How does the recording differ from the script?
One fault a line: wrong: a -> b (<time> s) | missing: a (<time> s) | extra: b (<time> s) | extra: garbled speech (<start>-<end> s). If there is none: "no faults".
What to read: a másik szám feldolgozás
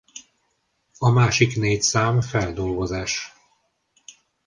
extra: négy (1.6 s)